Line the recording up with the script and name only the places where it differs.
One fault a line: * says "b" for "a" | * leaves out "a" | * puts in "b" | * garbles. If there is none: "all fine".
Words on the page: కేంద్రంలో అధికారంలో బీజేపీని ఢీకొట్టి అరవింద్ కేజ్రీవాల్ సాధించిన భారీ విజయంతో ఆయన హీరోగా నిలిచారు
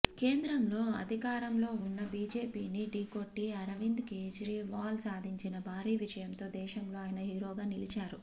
* puts in "ఉన్న"
* puts in "దేశంలో"